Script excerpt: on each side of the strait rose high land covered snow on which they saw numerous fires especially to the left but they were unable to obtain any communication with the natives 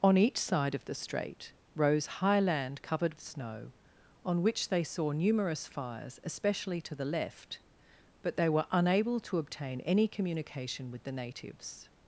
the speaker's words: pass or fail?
pass